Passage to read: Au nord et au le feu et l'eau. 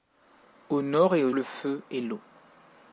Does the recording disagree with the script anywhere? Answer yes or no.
no